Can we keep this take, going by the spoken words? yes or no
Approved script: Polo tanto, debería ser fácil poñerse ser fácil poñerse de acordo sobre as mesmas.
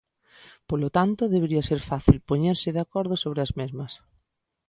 no